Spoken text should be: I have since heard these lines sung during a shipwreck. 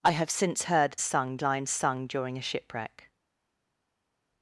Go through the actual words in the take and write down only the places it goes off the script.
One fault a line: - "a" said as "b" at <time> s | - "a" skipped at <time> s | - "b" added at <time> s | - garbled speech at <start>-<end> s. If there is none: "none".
- "these" said as "sung" at 1.0 s